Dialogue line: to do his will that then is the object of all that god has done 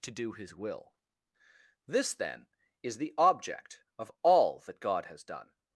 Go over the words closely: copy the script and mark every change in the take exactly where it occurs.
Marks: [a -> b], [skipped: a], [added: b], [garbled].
to do his will [that -> this] then is the object of all that god has done